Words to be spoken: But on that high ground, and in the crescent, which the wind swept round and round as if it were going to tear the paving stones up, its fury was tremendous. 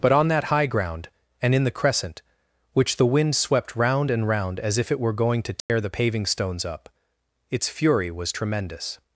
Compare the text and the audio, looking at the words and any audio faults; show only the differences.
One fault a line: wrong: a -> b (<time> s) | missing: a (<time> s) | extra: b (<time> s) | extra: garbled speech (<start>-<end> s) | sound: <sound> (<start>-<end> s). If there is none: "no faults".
sound: dropout (5.6-5.7 s)